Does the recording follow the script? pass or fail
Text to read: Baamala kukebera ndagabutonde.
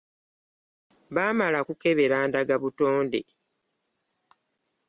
pass